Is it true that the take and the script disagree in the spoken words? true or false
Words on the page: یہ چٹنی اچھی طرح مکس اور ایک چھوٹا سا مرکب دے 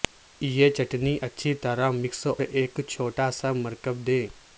true